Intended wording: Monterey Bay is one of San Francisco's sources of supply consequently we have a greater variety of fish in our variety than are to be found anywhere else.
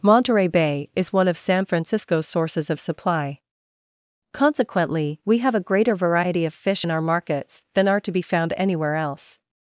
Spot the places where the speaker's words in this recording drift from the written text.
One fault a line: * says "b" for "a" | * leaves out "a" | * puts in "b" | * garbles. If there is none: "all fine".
* says "markets" for "variety"